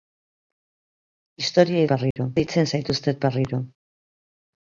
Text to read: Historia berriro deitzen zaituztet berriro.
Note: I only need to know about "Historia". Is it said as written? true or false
true